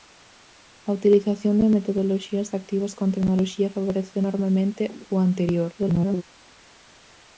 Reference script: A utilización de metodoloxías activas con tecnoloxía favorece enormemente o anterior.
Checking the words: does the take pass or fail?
fail